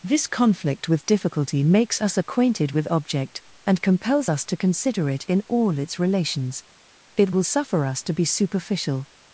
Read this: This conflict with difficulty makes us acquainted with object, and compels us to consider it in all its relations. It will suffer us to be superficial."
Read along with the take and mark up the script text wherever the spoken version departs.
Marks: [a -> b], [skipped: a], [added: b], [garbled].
This conflict with difficulty makes us acquainted with object, and compels us to consider it in all its relations. It will suffer us to be superficial."